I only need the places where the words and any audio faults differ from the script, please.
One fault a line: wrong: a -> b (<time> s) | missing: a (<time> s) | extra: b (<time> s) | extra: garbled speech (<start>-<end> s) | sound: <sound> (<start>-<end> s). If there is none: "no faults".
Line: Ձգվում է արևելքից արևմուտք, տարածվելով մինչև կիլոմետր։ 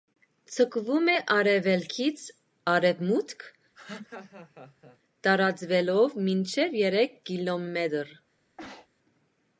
sound: laugh (3.7-5.0 s)
extra: երեք (6.9 s)
sound: sneeze (8.6-8.9 s)